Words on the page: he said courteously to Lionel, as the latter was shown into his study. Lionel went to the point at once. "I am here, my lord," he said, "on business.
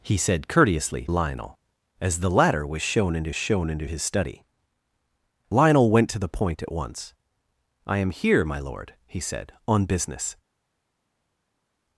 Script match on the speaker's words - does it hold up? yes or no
no